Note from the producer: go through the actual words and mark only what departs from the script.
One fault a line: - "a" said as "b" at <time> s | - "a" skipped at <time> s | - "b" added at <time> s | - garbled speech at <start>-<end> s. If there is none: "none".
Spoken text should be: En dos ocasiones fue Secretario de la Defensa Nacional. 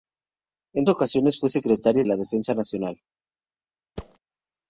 - "dos" skipped at 0.9 s
- "de" skipped at 2.0 s